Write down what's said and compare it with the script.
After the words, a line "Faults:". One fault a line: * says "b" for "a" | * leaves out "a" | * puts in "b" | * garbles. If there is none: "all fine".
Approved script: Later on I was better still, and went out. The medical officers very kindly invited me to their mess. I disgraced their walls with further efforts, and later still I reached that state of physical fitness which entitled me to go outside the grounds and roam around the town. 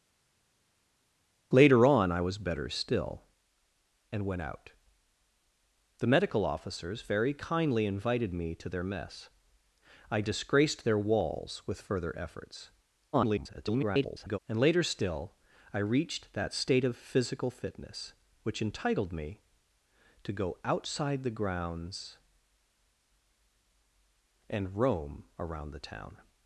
Later on I was better still, and went out. The medical officers very kindly invited me to their mess. I disgraced their walls with further efforts, [garbled] and later still I reached that state of physical fitness which entitled me to go outside the grounds and roam around the town.
Faults:
* garbles